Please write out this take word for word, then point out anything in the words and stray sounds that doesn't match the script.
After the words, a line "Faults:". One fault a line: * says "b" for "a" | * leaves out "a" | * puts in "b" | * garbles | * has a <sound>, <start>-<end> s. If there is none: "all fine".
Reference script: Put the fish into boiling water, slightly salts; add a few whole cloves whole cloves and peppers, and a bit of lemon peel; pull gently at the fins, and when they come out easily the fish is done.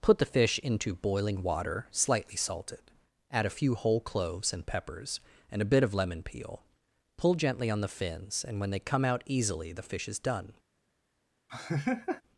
Put the fish into boiling water, slightly salted; add a few whole cloves and peppers, and a bit of lemon peel; pull gently on the fins, and when they come out easily the fish is done.
Faults:
* says "salted" for "salts"
* leaves out "whole cloves"
* says "on" for "at"
* has a laugh, 11.5-12.2 s